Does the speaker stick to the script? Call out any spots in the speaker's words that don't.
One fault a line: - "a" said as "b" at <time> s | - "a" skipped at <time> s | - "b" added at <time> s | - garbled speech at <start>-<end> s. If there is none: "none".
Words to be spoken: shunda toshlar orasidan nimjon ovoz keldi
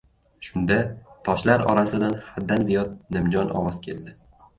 - "haddan ziyod" added at 2.3 s